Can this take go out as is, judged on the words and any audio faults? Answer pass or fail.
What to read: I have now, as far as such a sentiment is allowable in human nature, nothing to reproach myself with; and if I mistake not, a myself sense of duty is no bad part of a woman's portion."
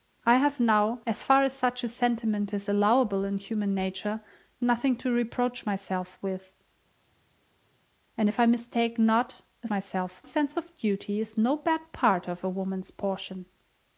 pass